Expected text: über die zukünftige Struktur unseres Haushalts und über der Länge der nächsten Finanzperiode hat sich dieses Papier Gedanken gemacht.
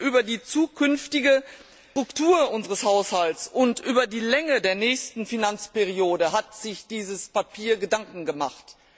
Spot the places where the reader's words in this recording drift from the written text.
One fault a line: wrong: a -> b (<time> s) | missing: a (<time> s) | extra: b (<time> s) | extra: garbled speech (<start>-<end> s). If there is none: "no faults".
wrong: der -> die (4.1 s)